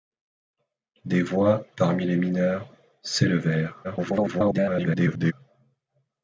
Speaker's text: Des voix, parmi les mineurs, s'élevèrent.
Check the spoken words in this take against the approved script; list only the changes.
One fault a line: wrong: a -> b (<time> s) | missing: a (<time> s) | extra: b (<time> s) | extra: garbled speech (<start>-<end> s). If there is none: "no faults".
extra: garbled speech (3.8-5.3 s)